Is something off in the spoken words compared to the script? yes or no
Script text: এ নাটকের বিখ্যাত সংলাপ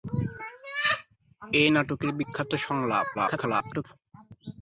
yes